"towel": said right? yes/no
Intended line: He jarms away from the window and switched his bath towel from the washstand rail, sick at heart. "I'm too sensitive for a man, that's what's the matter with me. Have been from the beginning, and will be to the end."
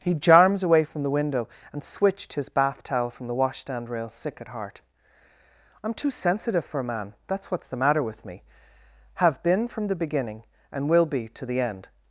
yes